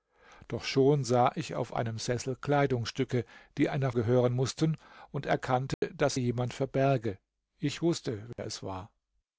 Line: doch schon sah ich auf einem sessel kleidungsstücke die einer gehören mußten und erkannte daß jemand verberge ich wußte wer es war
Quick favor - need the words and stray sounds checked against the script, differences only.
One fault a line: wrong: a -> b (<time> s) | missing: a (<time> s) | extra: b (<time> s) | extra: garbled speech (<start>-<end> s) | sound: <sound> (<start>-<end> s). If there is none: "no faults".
sound: dropout (5.7-5.8 s)
sound: dropout (8.3-8.4 s)